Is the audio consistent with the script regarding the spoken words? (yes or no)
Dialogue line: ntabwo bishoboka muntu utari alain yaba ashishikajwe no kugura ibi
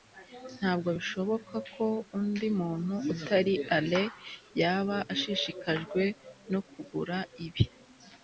no